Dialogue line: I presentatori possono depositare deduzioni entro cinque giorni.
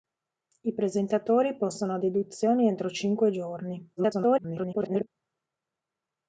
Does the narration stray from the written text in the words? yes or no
yes